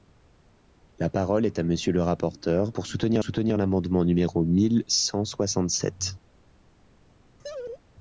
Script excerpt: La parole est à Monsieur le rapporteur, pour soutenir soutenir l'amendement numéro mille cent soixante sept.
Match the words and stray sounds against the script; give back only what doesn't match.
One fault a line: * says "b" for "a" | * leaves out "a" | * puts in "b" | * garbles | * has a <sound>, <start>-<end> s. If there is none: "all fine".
* has a laugh, 7.4-7.8 s